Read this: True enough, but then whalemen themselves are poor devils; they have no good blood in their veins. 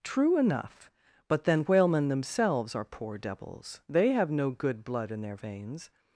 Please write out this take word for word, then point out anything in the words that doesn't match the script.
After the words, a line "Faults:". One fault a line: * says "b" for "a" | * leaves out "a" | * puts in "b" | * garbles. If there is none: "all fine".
True enough, but then whalemen themselves are poor devils; they have no good blood in their veins.
Faults:
all fine